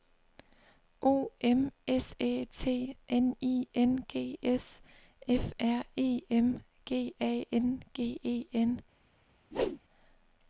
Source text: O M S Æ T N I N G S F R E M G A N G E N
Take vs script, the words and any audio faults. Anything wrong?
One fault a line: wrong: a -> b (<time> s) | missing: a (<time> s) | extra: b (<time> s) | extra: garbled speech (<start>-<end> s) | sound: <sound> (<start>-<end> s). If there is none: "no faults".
sound: whoosh (9.5-9.8 s)